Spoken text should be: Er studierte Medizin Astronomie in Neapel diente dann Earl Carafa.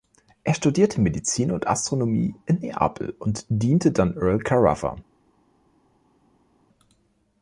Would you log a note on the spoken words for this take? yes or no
yes